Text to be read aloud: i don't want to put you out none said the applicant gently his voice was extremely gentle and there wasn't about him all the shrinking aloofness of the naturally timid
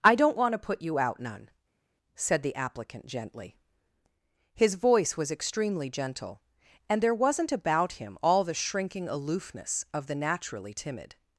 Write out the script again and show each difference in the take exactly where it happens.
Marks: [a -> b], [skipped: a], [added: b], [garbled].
i don't want to put you out none said the applicant gently his voice was extremely gentle and there wasn't about him all the shrinking aloofness of the naturally timid